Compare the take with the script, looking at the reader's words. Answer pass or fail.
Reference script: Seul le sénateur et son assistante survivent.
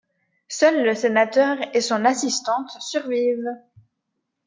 pass